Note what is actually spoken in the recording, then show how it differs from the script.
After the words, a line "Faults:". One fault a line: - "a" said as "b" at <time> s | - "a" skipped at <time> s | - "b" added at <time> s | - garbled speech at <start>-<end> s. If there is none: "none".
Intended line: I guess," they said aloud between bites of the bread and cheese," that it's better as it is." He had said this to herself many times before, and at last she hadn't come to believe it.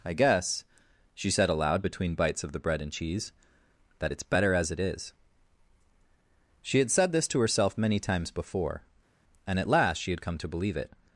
I guess," she said aloud between bites of the bread and cheese," that it's better as it is." She had said this to herself many times before, and at last she had come to believe it.
Faults:
- "they" said as "she" at 1.1 s
- "He" said as "She" at 6.6 s
- "hadn't" said as "had" at 10.1 s